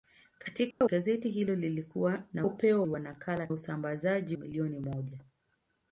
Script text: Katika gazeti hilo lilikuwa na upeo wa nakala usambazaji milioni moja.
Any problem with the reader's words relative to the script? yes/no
no